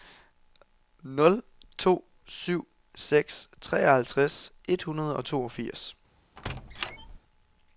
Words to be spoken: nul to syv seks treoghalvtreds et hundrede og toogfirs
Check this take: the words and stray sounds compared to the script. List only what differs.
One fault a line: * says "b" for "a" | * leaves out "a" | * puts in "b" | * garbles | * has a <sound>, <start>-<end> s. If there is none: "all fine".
* has a squeak, 6.4-7.2 s